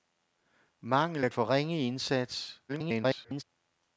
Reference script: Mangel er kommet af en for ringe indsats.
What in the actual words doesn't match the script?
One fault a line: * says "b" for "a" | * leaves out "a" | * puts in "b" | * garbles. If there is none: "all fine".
* leaves out "kommet af en"
* garbles